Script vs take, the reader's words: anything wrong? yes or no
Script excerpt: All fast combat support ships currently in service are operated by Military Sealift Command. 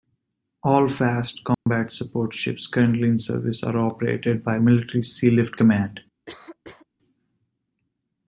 no